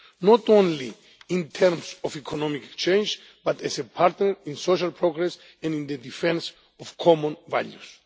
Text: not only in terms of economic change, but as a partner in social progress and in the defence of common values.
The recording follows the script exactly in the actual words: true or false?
true